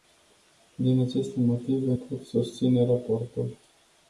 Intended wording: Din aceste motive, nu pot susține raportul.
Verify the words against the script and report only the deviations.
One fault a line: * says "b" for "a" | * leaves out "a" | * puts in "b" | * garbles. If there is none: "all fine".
* leaves out "nu"